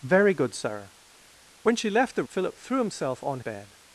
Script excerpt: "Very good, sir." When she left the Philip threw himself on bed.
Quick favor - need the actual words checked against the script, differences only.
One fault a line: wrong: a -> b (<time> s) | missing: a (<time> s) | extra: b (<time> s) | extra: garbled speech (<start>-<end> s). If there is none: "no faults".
no faults